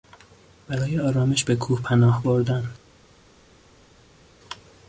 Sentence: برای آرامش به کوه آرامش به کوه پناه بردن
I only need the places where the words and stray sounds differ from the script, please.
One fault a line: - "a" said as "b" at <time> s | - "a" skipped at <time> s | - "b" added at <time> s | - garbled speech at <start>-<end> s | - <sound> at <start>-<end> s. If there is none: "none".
- "آرامش به کوه" skipped at 1.8 s